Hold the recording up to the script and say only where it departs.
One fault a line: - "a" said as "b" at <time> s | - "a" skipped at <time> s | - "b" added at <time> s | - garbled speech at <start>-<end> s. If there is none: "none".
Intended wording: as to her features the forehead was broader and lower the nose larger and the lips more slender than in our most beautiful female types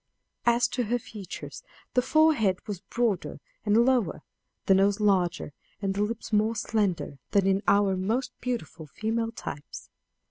none